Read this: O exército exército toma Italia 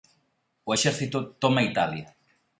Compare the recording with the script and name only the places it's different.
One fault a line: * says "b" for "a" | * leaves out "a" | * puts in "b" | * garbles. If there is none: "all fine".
* leaves out "exército"